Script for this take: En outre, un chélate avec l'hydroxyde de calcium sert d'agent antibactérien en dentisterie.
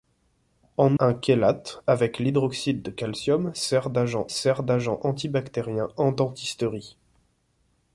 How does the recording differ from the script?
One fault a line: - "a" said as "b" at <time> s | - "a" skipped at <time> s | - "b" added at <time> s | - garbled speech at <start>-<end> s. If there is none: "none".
- "outre" skipped at 1.0 s
- "sert d'agent" added at 4.3 s